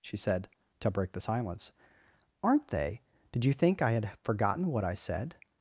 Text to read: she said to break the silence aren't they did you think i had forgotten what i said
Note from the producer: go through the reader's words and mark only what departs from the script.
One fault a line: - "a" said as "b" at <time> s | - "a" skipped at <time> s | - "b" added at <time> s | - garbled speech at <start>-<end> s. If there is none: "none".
none